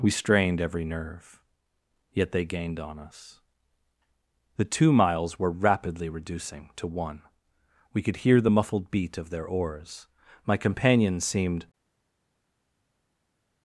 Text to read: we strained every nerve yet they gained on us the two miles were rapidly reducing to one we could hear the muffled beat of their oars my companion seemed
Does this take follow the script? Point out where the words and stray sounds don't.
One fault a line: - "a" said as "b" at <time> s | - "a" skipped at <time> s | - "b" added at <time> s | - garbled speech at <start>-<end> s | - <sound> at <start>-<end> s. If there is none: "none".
none